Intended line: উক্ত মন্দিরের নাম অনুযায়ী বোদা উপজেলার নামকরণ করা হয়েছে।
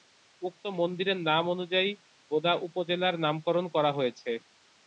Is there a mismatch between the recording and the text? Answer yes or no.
no